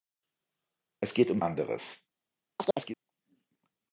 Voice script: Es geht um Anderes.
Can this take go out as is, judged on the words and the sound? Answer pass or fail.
fail